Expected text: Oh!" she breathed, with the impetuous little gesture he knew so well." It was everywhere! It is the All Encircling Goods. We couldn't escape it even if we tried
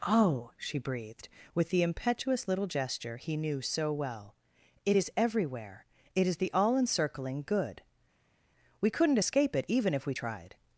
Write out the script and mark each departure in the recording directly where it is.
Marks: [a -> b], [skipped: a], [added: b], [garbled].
Oh!" she breathed, with the impetuous little gesture he knew so well." It [was -> is] everywhere! It is the All Encircling [Goods. -> Good] We couldn't escape it even if we tried